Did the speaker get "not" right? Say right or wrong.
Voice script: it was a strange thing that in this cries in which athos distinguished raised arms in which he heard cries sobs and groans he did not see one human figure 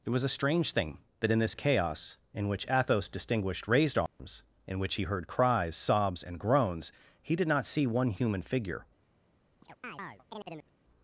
right